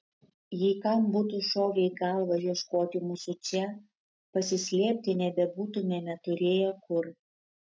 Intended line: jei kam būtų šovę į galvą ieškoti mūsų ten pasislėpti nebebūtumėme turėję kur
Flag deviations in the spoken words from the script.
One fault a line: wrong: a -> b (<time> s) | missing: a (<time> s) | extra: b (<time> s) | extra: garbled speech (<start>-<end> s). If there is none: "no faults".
wrong: ten -> čia (3.5 s)